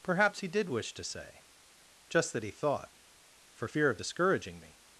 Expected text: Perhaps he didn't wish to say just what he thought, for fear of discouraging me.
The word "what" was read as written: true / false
false